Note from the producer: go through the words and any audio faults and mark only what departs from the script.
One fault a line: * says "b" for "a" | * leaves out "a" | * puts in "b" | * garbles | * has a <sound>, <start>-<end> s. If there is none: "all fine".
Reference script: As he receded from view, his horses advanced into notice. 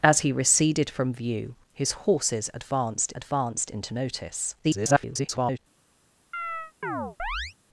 * puts in "advanced"
* garbles
* has a chirp, 6.3-7.5 s